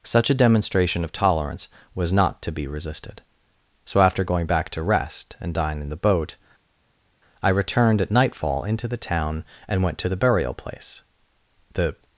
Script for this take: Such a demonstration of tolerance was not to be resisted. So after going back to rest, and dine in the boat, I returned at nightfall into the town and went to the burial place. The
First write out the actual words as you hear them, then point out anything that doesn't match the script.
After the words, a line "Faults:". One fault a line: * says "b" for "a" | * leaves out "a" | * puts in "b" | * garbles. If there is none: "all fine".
Such a demonstration of tolerance was not to be resisted. So after going back to rest, and dine in the boat, I returned at nightfall into the town and went to the burial place. The
Faults:
all fine